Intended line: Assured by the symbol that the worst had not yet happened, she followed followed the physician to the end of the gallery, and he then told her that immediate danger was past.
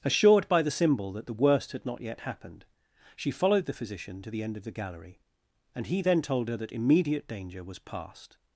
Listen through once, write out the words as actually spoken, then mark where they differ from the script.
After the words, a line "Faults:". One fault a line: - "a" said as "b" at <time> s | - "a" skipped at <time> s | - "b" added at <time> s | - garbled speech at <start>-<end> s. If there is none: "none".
Assured by the symbol that the worst had not yet happened, she followed the physician to the end of the gallery, and he then told her that immediate danger was past.
Faults:
- "followed" skipped at 3.6 s